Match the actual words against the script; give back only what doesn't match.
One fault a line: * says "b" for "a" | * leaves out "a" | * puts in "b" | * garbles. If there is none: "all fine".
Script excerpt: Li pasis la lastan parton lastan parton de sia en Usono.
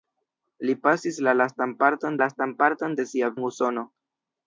all fine